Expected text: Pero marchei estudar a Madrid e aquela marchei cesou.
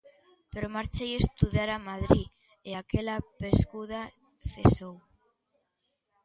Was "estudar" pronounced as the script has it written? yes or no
yes